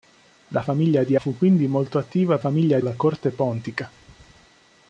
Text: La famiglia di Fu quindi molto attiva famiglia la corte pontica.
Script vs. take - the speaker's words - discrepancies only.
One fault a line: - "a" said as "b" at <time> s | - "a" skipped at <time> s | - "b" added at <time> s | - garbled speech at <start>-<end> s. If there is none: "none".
none